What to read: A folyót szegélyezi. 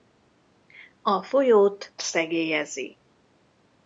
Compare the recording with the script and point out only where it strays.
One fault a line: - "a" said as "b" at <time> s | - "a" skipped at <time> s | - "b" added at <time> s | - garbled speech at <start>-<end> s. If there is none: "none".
none